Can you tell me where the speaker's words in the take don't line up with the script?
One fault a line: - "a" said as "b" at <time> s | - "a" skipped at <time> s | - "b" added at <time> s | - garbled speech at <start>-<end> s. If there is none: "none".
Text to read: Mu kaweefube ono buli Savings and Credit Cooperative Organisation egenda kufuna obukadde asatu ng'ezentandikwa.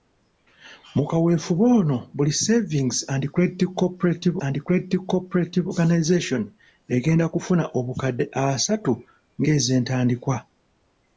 - "and Credit Cooperative" added at 4.5 s